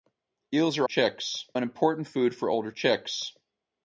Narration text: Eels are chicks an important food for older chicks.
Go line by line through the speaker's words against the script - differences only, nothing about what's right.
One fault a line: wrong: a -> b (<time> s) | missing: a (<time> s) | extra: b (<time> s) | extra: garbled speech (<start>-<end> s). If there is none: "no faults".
no faults